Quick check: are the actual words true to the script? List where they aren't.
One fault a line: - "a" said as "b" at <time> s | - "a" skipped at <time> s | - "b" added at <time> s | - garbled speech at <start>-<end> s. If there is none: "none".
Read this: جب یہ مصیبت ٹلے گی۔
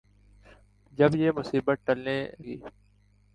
- "ٹلے" skipped at 1.9 s